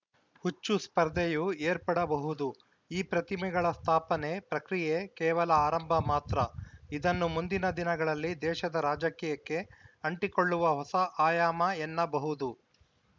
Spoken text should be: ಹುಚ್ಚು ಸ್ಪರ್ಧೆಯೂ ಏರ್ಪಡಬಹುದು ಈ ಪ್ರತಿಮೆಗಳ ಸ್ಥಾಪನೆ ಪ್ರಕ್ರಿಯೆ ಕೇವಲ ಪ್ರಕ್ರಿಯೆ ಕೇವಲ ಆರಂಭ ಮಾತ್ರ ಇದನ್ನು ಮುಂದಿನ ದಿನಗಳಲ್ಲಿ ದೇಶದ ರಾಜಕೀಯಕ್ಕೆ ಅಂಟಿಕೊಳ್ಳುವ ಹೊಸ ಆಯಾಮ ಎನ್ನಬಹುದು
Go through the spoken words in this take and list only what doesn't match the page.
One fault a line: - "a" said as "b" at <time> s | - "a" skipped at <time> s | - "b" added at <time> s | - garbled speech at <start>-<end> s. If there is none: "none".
- "ಪ್ರಕ್ರಿಯೆ ಕೇವಲ" skipped at 5.5 s